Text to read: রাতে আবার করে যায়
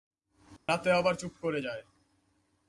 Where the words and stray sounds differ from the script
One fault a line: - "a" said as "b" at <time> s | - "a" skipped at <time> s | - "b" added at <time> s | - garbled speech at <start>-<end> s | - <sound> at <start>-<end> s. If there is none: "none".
- dropout at 0.6-0.7 s
- "চুপ" added at 1.1 s